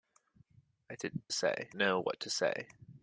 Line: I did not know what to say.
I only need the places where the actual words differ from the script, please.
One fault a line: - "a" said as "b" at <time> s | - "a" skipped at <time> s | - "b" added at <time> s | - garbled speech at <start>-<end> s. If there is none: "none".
- "not" said as "say" at 1.3 s